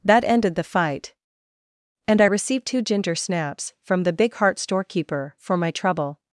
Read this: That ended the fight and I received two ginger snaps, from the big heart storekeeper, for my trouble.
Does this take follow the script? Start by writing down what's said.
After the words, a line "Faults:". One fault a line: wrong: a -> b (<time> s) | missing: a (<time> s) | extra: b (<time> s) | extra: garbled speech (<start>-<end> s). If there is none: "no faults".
That ended the fight and I received two ginger snaps, from the big heart storekeeper, for my trouble.
Faults:
no faults